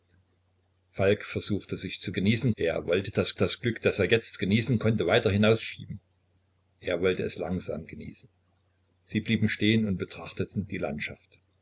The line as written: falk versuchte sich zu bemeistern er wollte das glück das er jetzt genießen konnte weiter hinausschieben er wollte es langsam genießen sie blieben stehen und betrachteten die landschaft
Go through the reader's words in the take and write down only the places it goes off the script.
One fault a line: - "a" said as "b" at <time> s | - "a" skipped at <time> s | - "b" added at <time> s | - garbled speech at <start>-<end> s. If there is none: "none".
- "bemeistern" said as "genießen" at 2.1 s
- "das" added at 3.3 s